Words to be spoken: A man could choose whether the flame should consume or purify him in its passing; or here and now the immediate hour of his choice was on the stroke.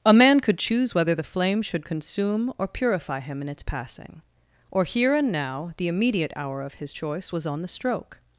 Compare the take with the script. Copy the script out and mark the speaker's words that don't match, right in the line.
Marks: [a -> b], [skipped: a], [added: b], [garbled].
A man could choose whether the flame should consume or purify him in its passing; or here and now the immediate hour of his choice was on the stroke.